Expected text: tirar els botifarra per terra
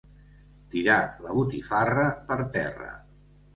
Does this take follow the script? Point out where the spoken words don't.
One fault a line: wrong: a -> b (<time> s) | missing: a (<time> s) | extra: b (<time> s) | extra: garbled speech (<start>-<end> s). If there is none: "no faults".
wrong: els -> la (1.2 s)